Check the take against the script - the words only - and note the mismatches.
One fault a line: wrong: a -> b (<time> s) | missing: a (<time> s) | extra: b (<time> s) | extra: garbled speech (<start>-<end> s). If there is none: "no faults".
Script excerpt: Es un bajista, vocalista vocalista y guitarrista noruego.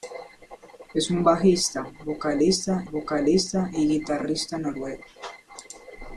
no faults